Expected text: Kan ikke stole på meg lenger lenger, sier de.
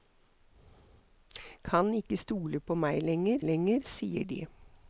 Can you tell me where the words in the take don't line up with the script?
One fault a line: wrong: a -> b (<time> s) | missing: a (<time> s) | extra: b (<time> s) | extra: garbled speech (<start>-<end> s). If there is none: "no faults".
no faults